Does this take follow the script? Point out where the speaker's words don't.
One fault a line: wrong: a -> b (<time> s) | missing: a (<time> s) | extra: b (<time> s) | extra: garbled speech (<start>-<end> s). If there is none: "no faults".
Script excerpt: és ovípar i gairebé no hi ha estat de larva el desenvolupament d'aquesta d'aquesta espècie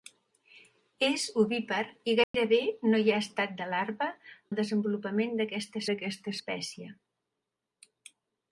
no faults